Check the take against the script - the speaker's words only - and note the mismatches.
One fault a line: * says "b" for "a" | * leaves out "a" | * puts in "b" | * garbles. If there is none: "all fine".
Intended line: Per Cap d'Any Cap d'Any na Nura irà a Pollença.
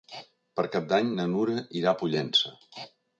* leaves out "Cap d'Any"